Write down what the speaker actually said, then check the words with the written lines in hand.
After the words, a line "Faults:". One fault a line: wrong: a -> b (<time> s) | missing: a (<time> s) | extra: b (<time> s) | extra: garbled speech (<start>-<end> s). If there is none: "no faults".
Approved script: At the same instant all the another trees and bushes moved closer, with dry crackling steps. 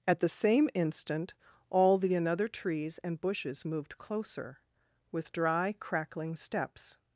At the same instant all the another trees and bushes moved closer, with dry crackling steps.
Faults:
no faults